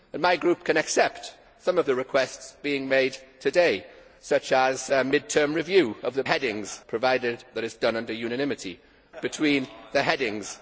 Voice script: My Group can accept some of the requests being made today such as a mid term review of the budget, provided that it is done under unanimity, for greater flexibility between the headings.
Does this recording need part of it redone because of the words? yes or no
yes